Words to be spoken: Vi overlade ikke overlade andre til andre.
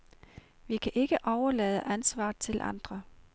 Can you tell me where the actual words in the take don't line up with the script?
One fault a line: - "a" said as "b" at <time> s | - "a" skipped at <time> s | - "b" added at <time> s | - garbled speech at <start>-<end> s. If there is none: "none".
- "overlade" said as "kan" at 0.8 s
- "andre" said as "ansvaret" at 1.8 s